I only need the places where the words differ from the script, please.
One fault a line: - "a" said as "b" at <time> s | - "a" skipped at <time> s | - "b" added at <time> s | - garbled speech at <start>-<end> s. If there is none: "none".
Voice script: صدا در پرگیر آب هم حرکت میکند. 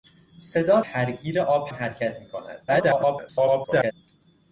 - "در" skipped at 0.8 s
- "هم" skipped at 1.7 s
- garbled speech at 2.7-3.9 s